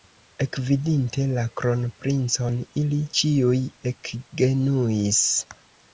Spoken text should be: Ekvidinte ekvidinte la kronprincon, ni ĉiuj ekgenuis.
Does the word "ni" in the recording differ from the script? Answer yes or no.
yes